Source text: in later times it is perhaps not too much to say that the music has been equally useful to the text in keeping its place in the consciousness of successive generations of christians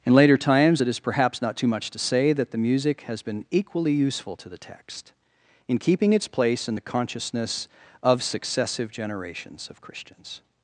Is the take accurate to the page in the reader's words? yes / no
yes